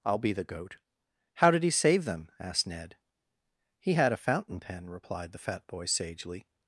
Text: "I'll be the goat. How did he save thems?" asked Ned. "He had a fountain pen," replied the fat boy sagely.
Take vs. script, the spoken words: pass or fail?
fail